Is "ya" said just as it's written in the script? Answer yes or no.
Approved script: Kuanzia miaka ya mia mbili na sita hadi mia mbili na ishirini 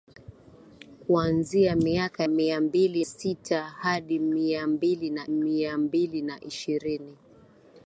no